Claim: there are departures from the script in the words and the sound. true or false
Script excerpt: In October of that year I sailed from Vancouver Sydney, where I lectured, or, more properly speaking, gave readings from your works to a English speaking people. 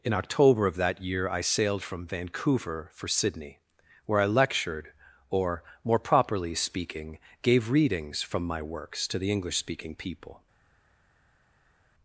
true